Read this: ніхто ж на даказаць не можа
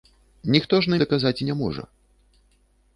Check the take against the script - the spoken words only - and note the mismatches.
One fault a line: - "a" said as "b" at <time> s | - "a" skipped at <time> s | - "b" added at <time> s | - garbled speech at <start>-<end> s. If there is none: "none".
none